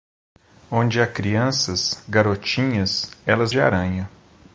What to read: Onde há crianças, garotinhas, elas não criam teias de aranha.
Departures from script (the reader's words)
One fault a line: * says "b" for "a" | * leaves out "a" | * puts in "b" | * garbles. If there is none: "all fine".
* leaves out "não criam teias"